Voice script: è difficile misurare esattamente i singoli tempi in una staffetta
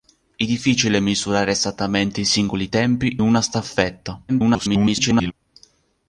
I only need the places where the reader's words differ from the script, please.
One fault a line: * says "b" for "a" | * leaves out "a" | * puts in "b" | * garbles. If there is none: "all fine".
* leaves out "in"
* garbles